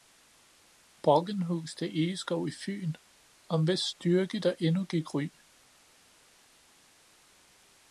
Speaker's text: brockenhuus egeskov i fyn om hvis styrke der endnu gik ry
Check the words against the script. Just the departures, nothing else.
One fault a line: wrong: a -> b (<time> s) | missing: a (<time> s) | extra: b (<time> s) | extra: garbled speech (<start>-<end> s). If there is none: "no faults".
extra: til (1.8 s)